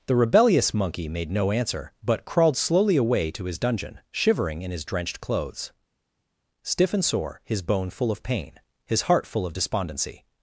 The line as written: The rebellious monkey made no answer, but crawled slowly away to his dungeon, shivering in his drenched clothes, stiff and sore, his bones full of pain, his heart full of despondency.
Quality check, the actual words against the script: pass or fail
fail